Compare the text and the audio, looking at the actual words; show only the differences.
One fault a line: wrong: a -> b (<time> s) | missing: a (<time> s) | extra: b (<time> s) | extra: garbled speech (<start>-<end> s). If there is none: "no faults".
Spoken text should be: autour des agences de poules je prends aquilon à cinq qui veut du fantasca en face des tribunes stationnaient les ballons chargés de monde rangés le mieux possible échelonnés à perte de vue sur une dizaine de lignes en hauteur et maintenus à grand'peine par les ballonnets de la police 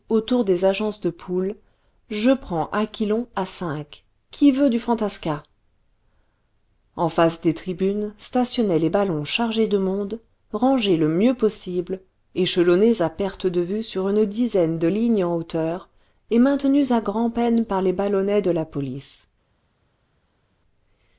no faults